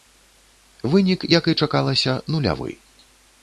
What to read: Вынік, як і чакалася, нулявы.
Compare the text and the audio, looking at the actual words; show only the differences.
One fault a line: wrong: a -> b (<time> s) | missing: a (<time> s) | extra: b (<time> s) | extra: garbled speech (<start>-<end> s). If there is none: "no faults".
no faults